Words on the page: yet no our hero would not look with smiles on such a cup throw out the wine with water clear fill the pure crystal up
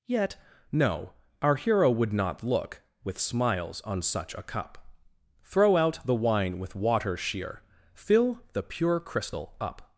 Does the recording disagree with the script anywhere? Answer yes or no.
yes